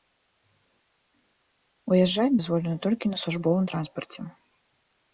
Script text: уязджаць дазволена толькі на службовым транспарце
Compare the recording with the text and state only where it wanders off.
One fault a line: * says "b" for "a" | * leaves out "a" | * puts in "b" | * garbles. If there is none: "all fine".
all fine